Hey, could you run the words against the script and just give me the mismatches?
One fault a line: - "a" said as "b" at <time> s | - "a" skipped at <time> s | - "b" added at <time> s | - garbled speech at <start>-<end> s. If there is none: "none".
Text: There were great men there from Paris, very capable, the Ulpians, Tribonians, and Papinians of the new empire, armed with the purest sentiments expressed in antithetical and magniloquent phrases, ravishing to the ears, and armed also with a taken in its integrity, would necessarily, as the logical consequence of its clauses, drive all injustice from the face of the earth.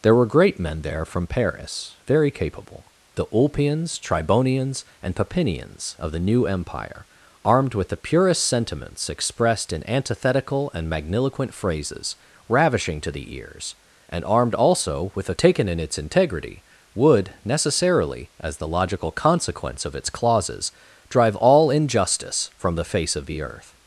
none